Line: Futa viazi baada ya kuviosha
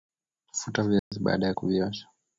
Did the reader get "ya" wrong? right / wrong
right